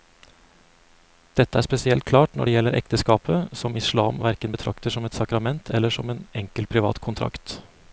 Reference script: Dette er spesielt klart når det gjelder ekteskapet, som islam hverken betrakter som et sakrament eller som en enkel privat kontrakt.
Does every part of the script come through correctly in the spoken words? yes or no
yes